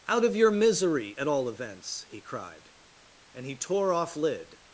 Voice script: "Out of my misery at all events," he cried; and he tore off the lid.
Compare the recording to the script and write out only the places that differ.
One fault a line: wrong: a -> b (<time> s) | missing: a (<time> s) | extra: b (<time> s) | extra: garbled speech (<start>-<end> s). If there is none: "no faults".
wrong: my -> your (0.3 s)
missing: the (4.2 s)